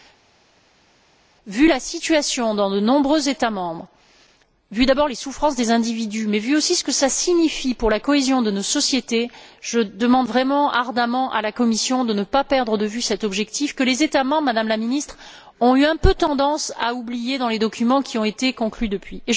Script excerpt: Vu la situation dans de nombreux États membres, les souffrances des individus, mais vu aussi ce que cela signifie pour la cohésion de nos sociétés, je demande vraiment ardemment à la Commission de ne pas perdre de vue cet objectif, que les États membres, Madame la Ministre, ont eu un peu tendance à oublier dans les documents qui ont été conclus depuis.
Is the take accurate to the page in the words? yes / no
no